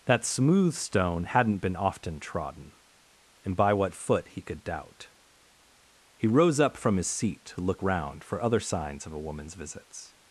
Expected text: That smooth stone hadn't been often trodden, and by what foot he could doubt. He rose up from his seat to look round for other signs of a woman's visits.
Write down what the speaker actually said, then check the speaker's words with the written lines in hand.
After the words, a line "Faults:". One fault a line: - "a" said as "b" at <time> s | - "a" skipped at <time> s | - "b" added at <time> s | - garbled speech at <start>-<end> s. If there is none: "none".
That smooth stone hadn't been often trodden, and by what foot he could doubt. He rose up from his seat to look round for other signs of a woman's visits.
Faults:
none